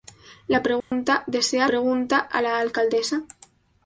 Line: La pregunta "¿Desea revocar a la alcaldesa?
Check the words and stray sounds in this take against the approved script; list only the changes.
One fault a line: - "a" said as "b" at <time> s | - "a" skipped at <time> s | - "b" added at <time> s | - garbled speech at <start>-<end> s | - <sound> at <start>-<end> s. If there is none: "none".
- dropout at 0.8-0.9 s
- "revocar" said as "pregunta" at 1.7 s